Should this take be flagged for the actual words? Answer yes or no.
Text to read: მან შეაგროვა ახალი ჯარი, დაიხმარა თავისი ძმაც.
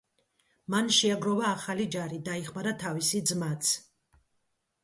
no